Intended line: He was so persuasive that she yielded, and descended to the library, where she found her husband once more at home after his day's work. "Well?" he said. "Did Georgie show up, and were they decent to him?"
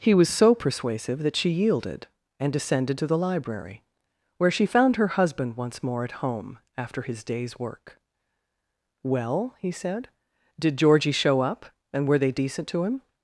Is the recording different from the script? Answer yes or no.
no